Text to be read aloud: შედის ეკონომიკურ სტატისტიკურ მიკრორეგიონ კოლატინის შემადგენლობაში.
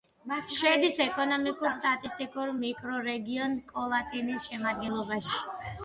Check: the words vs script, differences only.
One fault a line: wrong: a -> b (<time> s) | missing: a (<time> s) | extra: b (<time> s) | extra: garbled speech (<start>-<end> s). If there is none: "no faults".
no faults